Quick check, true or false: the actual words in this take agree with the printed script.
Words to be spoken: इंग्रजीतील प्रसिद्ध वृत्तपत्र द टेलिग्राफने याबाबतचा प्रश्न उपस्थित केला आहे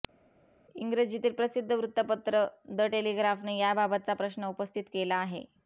true